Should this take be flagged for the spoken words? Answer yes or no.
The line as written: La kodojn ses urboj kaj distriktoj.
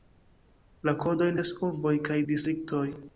no